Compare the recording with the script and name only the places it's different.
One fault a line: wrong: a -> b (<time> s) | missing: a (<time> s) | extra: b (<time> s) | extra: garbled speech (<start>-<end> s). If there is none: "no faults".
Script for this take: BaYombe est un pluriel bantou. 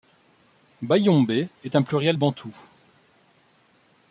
no faults